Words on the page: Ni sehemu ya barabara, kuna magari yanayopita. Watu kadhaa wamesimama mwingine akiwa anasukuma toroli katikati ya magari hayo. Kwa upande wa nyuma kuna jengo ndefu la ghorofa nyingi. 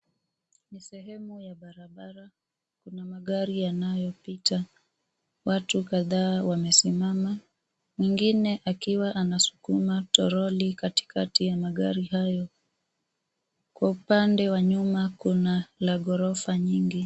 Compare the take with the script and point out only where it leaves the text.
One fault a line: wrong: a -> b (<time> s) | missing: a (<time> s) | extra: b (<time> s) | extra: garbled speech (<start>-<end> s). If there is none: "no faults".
missing: jengo ndefu (15.7 s)